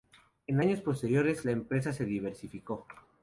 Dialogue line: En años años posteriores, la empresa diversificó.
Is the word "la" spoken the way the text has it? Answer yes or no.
yes